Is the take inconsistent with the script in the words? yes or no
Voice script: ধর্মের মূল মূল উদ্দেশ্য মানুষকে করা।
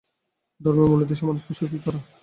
yes